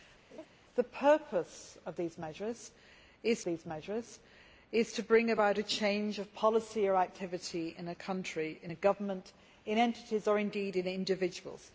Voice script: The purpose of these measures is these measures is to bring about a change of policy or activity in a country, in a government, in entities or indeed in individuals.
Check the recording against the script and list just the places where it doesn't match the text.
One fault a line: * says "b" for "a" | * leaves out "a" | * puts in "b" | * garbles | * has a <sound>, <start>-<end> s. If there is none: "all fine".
* has a laugh, 0.3-0.5 s